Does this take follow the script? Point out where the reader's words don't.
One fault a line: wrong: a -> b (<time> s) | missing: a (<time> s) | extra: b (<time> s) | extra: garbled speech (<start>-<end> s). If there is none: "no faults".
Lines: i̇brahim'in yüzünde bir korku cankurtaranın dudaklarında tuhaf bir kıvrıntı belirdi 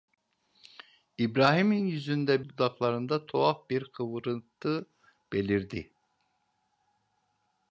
missing: bir korku cankurtaranın (2.5 s)